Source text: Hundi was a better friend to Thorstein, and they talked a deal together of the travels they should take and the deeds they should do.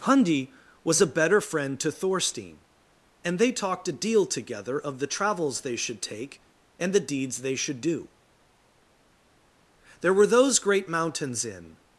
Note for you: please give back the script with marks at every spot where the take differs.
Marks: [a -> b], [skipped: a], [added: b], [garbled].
Hundi was a better friend to Thorstein, and they talked a deal together of the travels they should take and the deeds they should do. [added: There were those great mountains in]